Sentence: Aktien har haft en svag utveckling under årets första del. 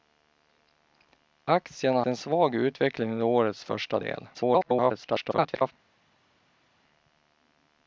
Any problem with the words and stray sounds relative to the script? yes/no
yes